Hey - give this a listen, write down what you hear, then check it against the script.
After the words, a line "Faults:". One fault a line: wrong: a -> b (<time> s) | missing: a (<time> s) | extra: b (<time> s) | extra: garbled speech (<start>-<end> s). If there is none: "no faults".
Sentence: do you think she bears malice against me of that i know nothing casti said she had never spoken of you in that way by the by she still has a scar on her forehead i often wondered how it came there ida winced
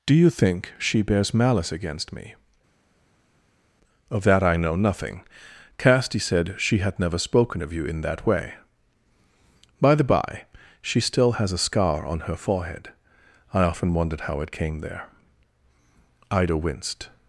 do you think she bears malice against me of that i know nothing casti said she had never spoken of you in that way by the by she still has a scar on her forehead i often wondered how it came there ida winced
Faults:
no faults